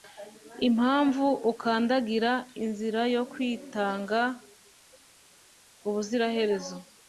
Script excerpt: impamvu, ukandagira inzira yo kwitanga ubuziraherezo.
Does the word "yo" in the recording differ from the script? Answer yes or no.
no